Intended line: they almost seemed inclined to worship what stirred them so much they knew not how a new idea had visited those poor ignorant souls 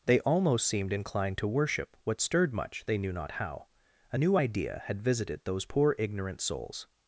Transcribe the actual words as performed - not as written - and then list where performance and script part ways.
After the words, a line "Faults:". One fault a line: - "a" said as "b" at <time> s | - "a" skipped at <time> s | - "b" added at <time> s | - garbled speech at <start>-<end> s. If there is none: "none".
they almost seemed inclined to worship what stirred much they knew not how a new idea had visited those poor ignorant souls
Faults:
- "them so" skipped at 2.5 s